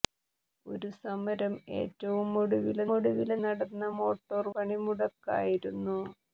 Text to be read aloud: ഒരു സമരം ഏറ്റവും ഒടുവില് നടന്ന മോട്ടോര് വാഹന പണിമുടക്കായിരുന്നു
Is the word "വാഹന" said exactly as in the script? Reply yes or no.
no